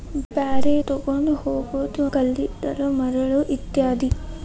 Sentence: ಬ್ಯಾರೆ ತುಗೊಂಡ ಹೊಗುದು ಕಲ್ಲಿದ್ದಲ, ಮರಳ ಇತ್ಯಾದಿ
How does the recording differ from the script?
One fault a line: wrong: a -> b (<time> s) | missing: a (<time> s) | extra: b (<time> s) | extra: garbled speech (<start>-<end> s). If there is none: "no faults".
no faults